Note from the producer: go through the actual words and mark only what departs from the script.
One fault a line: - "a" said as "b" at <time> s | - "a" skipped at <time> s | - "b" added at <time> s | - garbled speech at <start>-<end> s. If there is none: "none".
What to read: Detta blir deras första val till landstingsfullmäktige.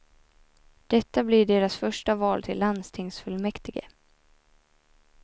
none